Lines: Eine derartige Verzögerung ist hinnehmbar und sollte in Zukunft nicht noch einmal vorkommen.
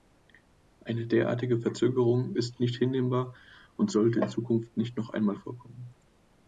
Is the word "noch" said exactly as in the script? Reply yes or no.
yes